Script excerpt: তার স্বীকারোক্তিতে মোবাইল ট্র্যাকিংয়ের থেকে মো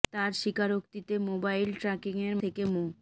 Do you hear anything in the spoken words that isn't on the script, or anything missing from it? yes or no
no